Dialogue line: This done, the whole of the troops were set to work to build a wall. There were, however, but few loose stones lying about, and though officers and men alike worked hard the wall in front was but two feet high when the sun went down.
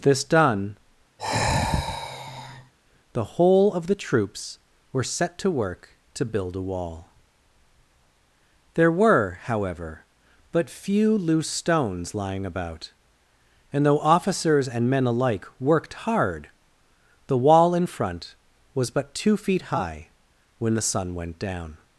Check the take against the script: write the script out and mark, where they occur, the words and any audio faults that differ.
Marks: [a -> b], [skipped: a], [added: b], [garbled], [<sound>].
This done, [sigh] the whole of the troops were set to work to build a wall. There were, however, but few loose stones lying about, and though officers and men alike worked hard the wall in front was but two feet high when the sun went down.